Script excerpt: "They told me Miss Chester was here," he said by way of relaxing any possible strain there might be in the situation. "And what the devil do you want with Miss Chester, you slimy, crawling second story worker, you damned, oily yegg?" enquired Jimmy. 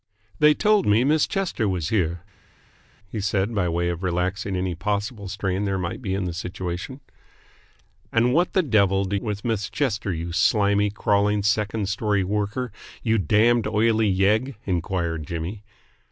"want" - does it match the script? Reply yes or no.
no